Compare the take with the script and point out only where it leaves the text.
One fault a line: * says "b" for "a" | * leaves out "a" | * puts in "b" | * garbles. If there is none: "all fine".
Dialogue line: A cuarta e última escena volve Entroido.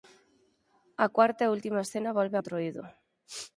all fine